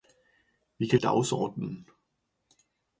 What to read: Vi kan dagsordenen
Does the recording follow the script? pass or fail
pass